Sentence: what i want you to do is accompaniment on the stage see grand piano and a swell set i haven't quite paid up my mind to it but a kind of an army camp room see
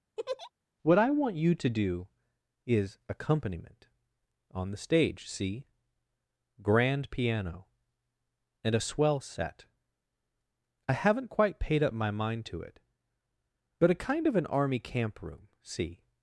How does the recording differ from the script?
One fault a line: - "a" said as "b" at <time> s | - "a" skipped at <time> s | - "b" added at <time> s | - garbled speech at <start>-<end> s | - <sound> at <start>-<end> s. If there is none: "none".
- laugh at 0.2-0.5 s